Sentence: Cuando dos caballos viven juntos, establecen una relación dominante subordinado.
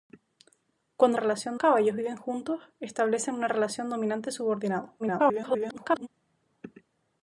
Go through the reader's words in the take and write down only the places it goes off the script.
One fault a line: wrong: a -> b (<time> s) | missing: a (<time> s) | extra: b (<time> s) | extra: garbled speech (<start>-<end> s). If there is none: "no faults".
wrong: dos -> relación (1.2 s)
extra: garbled speech (5.0-6.1 s)